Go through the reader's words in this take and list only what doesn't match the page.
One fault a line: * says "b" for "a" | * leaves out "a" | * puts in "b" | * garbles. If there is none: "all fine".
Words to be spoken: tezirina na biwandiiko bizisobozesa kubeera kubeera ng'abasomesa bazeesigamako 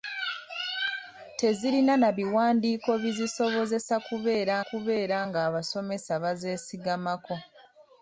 all fine